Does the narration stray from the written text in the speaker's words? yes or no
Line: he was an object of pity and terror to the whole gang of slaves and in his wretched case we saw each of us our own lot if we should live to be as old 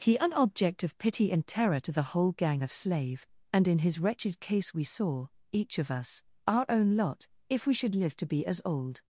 yes